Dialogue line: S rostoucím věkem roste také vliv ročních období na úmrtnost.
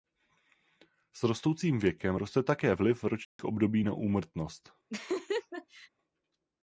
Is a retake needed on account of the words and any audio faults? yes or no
yes